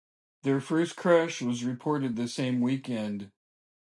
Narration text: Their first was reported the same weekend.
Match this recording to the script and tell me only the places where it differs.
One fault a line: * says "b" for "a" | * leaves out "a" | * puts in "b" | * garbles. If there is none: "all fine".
* puts in "crash"